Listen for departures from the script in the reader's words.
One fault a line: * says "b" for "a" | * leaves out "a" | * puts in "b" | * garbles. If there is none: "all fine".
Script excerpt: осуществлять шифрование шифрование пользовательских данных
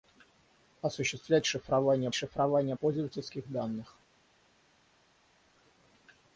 all fine